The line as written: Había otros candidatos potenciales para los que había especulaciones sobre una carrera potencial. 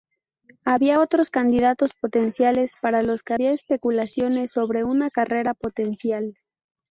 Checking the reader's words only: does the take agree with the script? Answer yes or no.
yes